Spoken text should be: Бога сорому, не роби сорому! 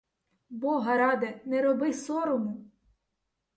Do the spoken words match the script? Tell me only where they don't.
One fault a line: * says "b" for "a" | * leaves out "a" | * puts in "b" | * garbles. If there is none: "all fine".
* says "ради" for "сорому"